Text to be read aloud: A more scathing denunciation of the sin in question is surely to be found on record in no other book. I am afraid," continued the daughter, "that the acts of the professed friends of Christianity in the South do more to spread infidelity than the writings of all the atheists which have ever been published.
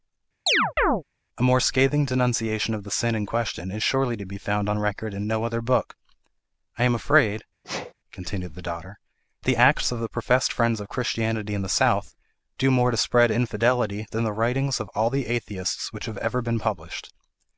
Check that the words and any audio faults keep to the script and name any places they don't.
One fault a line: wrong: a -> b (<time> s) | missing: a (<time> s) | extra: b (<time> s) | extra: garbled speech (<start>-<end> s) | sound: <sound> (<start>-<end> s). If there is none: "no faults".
sound: chirp (0.5-1.0 s)
sound: sneeze (7.6-7.9 s)
missing: that (9.0 s)